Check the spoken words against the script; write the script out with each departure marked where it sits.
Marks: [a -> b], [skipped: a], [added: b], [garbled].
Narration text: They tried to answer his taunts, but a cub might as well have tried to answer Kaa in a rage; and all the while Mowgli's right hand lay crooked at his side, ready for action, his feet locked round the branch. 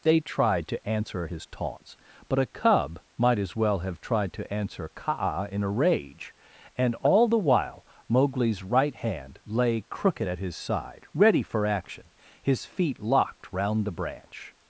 They tried to answer his taunts, but a cub might as well have tried to answer Kaa in a rage; and all the while Mowgli's right hand lay crooked at his side, ready for action, his feet locked round the branch.